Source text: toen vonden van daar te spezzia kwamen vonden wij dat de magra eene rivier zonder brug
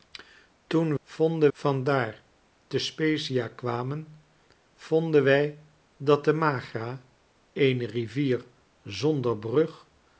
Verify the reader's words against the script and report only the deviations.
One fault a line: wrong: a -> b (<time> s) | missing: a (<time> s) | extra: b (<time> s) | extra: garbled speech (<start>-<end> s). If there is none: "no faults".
no faults